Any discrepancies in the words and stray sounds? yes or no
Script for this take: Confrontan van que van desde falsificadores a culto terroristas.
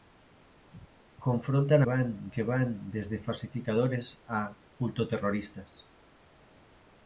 no